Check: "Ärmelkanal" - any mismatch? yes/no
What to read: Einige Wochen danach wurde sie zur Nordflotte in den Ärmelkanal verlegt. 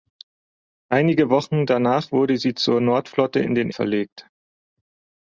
yes